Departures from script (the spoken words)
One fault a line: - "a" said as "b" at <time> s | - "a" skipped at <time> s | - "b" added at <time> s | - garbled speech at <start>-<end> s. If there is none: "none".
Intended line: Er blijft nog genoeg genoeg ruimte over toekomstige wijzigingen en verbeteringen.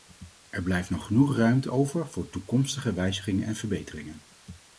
- "genoeg" skipped at 1.4 s
- "voor" added at 2.1 s